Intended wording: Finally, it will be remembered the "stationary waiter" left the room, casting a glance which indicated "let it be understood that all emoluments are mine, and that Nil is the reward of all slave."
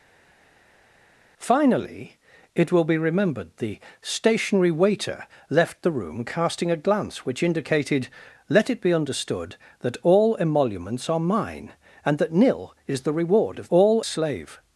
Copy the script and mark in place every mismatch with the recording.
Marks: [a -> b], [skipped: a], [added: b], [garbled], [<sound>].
Finally, it will be remembered the "stationary waiter" left the room, casting a glance which indicated "let it be understood that all emoluments are mine, and that Nil is the reward of all slave."